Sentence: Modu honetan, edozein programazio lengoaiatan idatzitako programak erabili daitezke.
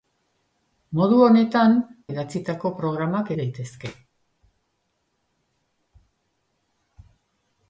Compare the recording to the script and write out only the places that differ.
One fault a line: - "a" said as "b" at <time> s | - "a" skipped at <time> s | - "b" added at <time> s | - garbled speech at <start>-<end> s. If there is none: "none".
- "edozein programazio lengoaiatan" skipped at 1.8 s
- "erabili" skipped at 3.3 s